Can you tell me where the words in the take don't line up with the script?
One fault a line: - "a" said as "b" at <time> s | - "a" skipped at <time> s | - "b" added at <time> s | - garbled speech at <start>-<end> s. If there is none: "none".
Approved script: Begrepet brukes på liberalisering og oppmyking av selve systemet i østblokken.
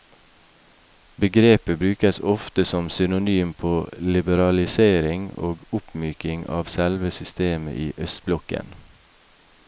- "ofte som synonym" added at 2.2 s